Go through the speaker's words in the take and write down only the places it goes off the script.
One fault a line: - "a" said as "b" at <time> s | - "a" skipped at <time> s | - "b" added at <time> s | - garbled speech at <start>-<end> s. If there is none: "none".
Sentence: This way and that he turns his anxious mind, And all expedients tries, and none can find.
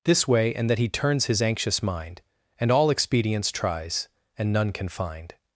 none